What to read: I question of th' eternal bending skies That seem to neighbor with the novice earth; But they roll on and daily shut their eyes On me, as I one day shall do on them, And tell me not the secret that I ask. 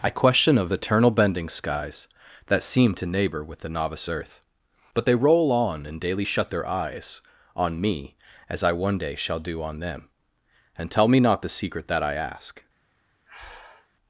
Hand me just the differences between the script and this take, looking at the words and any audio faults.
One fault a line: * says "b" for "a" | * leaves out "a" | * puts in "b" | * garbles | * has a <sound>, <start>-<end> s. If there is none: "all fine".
* leaves out "th"
* has a breath, 13.3-13.9 s